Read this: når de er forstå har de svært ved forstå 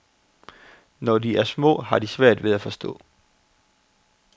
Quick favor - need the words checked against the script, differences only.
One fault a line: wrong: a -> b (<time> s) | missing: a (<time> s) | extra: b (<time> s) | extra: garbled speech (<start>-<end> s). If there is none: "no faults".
wrong: forstå -> små (1.4 s)
extra: at (2.5 s)